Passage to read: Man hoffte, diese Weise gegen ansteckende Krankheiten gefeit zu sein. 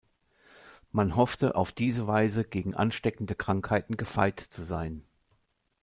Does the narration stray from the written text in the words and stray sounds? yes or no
yes